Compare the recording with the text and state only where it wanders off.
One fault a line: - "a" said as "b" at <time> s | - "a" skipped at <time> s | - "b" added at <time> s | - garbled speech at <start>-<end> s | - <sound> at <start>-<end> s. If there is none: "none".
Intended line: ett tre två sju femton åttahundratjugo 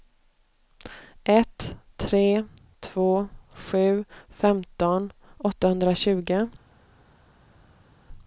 none